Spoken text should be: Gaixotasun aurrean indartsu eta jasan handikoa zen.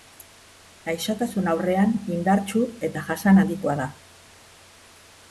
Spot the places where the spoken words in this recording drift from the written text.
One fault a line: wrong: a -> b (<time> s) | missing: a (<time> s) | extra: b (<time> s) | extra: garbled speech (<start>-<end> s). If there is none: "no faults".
wrong: zen -> da (3.8 s)